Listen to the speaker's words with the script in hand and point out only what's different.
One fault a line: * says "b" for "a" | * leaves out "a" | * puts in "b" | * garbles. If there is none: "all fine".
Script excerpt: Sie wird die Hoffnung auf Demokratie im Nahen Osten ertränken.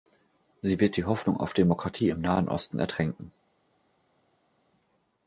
all fine